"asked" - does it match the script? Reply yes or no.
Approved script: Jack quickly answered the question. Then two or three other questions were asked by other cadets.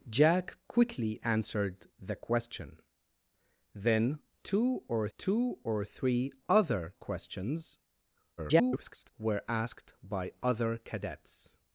yes